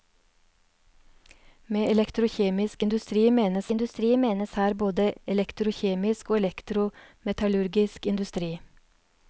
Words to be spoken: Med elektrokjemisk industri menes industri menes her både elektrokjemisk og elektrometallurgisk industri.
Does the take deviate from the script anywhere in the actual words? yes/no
no